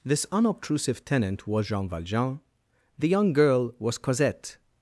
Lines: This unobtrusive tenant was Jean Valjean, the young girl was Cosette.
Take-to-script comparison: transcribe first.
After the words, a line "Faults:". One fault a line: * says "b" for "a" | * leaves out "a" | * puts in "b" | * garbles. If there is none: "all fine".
This unobtrusive tenant was Jean Valjean, the young girl was Cosette.
Faults:
all fine